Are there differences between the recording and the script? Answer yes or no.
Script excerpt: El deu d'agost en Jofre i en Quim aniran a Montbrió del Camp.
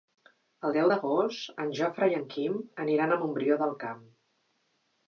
no